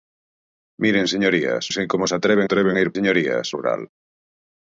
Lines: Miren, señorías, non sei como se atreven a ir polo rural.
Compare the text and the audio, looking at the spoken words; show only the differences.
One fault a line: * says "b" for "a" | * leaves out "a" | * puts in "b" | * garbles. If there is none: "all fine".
* leaves out "non"
* puts in "atreven"
* says "señorías" for "polo"